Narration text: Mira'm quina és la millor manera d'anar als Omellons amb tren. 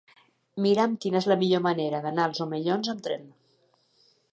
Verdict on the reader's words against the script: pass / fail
pass